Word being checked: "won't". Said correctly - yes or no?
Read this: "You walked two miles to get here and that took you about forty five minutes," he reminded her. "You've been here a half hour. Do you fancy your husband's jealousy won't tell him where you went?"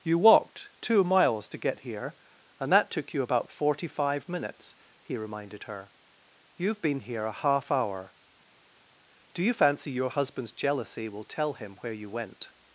no